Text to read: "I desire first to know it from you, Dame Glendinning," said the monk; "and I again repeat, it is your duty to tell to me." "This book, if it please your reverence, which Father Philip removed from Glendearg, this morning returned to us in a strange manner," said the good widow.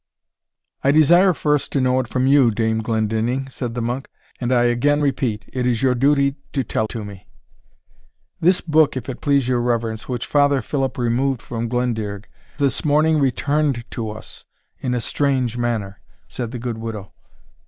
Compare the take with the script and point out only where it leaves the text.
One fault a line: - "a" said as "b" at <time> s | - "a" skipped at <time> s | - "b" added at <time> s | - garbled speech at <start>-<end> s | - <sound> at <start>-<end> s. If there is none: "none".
none